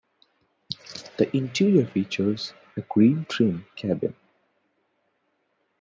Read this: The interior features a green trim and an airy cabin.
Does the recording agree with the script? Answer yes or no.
no